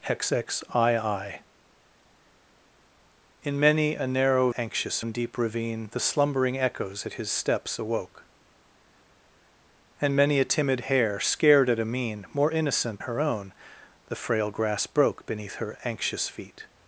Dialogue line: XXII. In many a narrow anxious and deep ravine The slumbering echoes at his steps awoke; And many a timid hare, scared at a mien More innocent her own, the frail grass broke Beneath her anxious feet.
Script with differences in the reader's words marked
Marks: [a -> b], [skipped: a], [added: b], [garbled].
XXII. In many a narrow anxious and deep ravine The slumbering echoes at his steps awoke; And many a timid hare, scared at a mien More innocent her own, the frail grass broke Beneath her anxious feet.